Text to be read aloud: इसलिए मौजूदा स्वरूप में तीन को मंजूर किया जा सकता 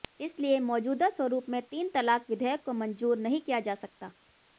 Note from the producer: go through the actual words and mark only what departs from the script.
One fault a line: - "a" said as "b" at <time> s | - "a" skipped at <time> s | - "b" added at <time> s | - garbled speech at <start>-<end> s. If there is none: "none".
- "तलाक विधेयक" added at 1.9 s
- "नहीं" added at 3.2 s